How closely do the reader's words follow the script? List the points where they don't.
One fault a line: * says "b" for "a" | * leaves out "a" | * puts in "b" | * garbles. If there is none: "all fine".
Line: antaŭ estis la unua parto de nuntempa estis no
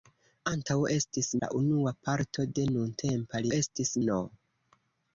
all fine